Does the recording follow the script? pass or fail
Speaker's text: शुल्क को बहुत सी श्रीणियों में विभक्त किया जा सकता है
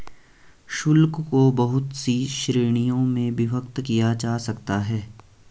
pass